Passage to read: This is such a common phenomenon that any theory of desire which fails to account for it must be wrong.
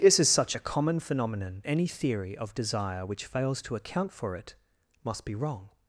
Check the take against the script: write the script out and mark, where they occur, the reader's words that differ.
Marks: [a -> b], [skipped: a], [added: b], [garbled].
This is such a common phenomenon [skipped: that] any theory of desire which fails to account for it must be wrong.